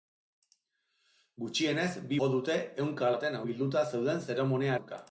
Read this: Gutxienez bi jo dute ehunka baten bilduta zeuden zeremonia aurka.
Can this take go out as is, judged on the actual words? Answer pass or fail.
pass